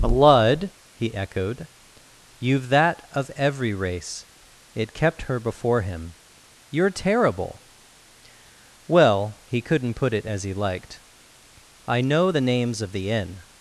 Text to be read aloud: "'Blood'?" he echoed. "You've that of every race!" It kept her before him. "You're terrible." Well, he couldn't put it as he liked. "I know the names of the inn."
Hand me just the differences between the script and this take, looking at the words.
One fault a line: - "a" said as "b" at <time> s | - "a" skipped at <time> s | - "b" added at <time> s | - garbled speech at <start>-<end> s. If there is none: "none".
none